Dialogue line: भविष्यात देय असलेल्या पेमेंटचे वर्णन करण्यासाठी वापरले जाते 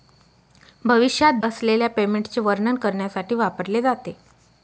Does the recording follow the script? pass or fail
fail